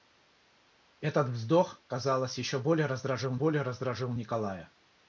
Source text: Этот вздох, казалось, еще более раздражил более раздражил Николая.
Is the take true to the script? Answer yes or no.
yes